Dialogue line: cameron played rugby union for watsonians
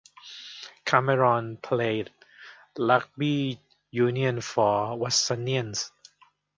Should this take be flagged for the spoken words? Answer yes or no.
no